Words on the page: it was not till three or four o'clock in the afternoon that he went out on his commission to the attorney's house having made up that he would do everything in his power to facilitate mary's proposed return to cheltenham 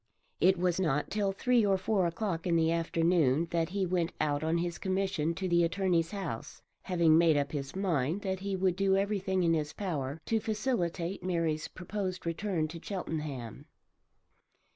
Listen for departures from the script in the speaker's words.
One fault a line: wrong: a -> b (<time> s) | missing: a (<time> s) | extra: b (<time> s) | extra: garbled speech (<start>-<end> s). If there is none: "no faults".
extra: his mind (7.5 s)